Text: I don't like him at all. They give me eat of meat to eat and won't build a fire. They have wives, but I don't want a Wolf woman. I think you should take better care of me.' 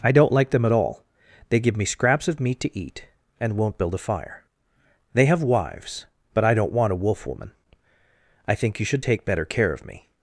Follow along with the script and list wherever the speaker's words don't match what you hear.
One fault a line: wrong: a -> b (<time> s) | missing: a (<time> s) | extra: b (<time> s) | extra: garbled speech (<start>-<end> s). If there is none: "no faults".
wrong: him -> them (0.5 s)
wrong: eat -> scraps (1.9 s)